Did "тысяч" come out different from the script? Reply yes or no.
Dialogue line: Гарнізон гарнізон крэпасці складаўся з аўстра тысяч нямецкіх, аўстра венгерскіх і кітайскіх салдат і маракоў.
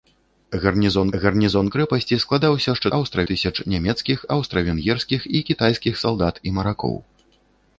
no